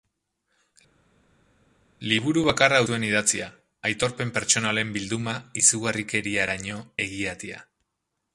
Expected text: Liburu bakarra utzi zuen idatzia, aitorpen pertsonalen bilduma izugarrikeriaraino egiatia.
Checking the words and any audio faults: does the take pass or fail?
fail